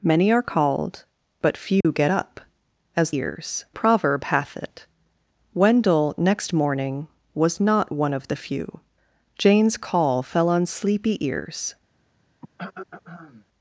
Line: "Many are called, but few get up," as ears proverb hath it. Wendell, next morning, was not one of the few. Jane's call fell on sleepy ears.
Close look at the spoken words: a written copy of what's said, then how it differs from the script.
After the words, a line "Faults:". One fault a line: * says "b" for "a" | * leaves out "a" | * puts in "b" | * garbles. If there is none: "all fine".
"Many are called, but few get up," as ears proverb hath it. Wendell, next morning, was not one of the few. Jane's call fell on sleepy ears.
Faults:
all fine